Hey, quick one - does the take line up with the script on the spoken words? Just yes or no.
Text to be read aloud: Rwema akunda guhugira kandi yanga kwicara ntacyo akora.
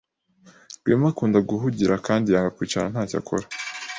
yes